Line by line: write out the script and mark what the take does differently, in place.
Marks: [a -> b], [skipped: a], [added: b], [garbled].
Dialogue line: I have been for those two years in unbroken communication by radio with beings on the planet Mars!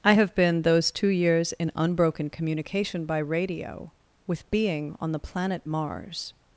I have been [skipped: for] those two years in unbroken communication by radio with [beings -> being] on the planet Mars!